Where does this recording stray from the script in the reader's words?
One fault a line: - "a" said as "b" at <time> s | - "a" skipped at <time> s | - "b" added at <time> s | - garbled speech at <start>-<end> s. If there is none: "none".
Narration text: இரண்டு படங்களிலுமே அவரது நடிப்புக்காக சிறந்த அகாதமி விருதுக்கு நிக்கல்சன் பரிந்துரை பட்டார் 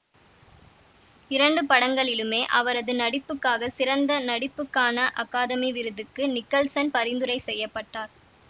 - "நடிப்புக்கான" added at 4.3 s
- "செய்ய" added at 7.4 s